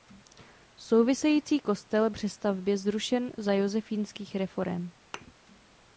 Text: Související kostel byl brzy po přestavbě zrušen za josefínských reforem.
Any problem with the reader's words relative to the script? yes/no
yes